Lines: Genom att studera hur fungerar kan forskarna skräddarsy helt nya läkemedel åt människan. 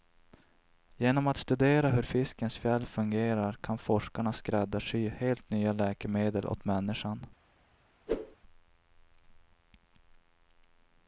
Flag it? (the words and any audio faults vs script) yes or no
yes